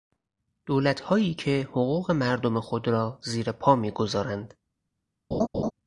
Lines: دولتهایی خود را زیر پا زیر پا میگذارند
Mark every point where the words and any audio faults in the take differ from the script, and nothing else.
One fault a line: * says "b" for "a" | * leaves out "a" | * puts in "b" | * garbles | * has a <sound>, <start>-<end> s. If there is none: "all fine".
* puts in "که حقوق مردم"
* leaves out "زیر پا"
* has a laugh, 5.3-5.7 s